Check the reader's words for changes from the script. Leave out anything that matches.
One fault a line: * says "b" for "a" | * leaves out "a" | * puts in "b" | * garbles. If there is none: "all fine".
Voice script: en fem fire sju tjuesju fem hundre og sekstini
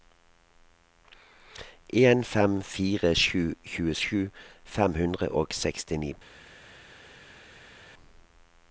all fine